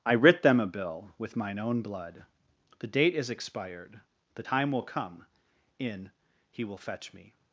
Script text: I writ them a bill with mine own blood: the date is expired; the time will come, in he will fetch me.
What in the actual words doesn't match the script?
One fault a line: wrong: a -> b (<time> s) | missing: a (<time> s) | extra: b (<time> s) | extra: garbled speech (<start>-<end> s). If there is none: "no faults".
no faults